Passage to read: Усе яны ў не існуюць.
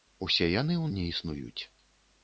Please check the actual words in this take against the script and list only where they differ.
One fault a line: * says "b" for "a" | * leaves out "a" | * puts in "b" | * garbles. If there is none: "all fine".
all fine